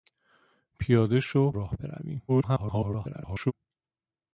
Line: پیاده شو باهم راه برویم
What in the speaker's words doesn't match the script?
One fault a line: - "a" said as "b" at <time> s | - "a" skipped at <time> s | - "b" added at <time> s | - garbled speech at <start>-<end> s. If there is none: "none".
- "باهم" skipped at 1.5 s
- garbled speech at 2.3-3.5 s